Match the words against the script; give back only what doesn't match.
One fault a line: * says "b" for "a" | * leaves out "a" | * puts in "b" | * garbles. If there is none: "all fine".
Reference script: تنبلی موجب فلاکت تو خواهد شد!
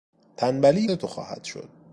* leaves out "موجب فلاکت"